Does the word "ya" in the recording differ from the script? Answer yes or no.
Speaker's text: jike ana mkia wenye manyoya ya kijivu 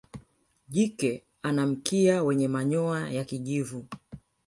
no